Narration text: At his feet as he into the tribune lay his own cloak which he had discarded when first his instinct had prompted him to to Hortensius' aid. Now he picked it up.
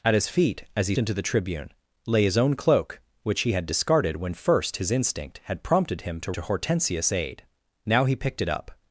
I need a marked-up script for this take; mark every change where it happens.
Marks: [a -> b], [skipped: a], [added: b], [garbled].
At his feet as he into the tribune lay his own cloak which he had discarded when first his instinct had prompted him to to Hortensius' aid. Now he picked it up.